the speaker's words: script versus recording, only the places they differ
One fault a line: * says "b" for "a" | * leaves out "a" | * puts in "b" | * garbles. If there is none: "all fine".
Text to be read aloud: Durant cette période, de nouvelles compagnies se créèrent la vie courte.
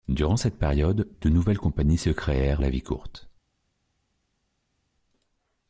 all fine